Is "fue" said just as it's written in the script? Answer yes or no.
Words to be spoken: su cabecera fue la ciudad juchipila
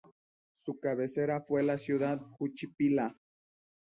yes